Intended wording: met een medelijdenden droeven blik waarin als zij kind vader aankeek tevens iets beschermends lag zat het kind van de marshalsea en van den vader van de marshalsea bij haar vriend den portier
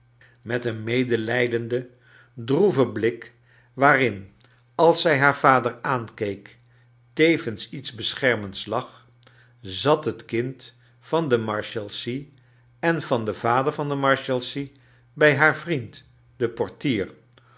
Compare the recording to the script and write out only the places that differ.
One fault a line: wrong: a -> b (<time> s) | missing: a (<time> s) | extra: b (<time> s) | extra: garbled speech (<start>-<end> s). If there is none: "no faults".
wrong: kind -> haar (5.2 s)